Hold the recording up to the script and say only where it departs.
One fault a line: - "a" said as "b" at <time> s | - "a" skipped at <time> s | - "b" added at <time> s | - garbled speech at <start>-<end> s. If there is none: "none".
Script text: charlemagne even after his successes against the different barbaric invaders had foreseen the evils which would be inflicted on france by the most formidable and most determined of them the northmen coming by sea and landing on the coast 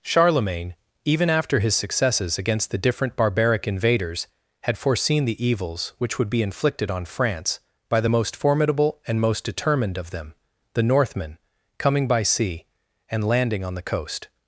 none